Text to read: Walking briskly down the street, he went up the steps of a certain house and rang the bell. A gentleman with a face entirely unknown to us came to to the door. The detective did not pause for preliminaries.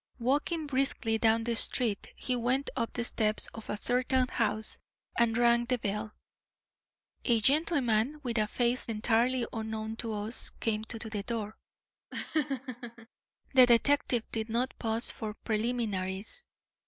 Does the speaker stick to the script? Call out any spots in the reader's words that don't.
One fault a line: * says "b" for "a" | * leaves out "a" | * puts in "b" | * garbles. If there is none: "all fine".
all fine